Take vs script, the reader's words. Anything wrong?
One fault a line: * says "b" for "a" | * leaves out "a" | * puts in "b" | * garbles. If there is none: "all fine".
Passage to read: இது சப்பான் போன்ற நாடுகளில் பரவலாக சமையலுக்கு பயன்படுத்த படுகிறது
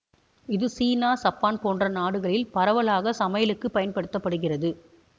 * puts in "சீனா"